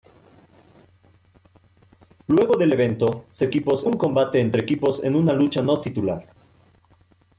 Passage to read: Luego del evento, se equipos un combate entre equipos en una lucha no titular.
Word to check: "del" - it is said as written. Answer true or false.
true